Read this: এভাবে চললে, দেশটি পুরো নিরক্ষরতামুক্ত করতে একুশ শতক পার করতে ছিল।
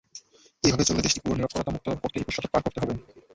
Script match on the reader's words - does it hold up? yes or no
no